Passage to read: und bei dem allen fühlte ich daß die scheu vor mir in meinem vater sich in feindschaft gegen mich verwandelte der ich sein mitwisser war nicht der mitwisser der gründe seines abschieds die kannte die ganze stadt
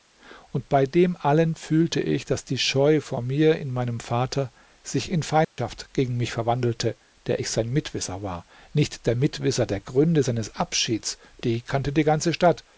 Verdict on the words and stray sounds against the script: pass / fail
fail